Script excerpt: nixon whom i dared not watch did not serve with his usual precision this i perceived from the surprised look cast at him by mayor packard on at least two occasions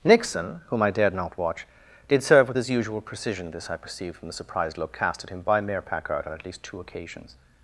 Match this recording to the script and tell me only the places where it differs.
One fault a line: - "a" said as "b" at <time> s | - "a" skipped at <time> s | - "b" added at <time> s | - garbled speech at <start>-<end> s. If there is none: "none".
- "not" skipped at 2.2 s